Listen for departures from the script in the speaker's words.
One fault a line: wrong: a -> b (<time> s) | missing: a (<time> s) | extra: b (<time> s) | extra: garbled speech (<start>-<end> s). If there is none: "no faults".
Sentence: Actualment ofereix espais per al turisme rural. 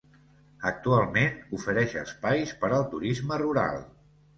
no faults